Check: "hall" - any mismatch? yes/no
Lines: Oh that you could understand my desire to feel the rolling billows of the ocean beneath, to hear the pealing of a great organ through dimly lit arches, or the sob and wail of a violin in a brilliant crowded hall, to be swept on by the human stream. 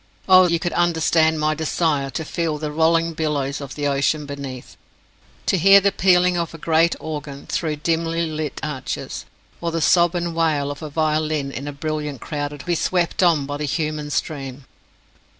yes